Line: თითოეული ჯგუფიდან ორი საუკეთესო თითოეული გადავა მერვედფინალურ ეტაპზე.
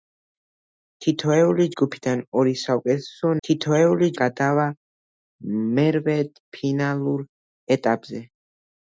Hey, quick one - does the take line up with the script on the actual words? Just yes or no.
yes